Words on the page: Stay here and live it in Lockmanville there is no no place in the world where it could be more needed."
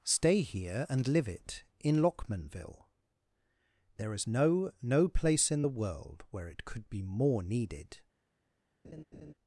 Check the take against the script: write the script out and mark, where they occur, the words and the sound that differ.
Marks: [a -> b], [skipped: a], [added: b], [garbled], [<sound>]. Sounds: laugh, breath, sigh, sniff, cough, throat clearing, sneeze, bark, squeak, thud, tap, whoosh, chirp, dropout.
Stay here and live it in Lockmanville there is no no place in the world where it could be more needed." [laugh]